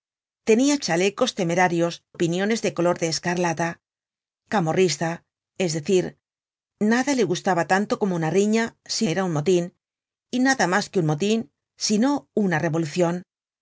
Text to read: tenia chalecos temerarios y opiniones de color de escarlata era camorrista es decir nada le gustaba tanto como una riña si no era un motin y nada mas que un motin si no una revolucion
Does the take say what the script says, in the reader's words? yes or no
no